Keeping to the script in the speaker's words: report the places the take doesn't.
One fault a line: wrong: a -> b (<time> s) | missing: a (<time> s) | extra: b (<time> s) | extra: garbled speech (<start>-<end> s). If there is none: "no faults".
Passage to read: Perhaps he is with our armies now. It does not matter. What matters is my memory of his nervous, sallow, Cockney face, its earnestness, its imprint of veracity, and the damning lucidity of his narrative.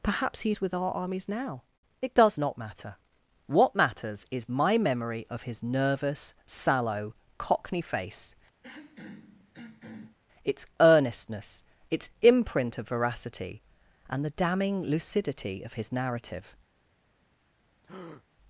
no faults